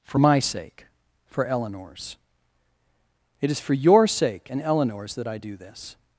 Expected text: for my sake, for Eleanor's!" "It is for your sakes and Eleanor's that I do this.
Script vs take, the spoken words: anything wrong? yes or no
yes